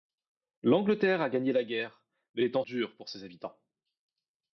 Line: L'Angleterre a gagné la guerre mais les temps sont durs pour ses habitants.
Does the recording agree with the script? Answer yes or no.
no